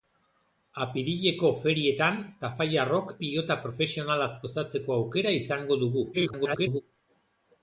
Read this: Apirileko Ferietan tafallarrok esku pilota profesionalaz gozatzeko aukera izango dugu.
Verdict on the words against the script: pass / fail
fail